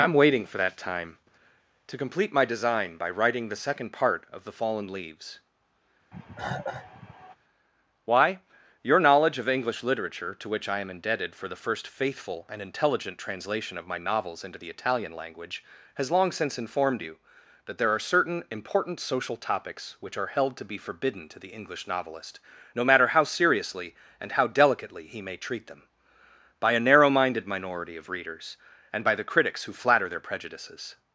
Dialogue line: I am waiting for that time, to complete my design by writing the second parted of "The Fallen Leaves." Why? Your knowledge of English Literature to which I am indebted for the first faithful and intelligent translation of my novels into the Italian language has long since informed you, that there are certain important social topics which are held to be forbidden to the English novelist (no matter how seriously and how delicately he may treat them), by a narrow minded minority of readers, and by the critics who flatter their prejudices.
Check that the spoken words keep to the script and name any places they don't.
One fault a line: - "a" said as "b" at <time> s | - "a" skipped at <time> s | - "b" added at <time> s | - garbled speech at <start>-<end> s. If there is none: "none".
- "parted" said as "part" at 3.9 s